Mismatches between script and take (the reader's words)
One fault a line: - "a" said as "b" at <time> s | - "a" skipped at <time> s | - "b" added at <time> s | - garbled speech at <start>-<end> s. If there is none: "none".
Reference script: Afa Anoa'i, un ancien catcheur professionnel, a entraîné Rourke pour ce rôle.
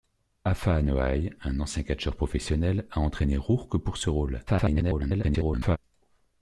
- garbled speech at 4.5-5.8 s